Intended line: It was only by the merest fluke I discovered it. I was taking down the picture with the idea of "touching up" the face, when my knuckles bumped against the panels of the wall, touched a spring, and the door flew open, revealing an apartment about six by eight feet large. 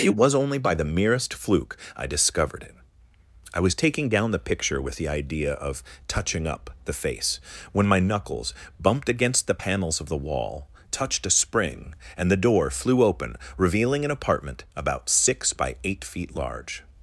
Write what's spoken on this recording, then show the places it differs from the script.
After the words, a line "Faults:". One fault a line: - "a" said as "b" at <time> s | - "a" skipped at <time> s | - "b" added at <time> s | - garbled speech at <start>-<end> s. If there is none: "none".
It was only by the merest fluke I discovered it. I was taking down the picture with the idea of "touching up" the face, when my knuckles bumped against the panels of the wall, touched a spring, and the door flew open, revealing an apartment about six by eight feet large.
Faults:
none